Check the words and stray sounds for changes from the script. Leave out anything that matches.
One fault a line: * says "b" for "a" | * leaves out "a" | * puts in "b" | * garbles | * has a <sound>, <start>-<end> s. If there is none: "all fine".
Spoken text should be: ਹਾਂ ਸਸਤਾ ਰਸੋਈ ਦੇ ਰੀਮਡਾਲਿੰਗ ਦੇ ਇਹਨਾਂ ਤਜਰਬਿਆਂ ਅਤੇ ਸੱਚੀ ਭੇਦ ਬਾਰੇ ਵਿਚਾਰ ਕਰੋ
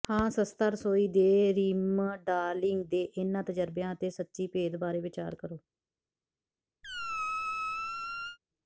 * has a squeak, 6.8-8.4 s